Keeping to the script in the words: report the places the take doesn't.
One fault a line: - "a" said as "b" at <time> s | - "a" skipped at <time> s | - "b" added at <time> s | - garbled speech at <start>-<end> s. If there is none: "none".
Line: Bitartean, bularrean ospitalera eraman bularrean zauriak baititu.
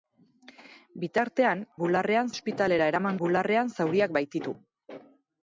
none